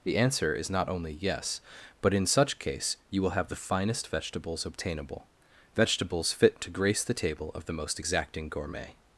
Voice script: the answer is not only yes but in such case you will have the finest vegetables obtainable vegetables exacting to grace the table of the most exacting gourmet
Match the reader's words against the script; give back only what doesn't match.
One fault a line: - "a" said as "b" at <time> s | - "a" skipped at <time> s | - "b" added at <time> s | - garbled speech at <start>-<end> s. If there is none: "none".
- "exacting" said as "fit" at 6.3 s